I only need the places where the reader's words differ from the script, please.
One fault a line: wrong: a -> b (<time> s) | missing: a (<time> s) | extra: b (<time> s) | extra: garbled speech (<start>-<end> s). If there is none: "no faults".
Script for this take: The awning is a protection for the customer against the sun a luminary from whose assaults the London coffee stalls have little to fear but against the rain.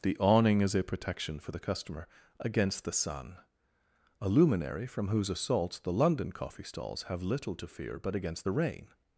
no faults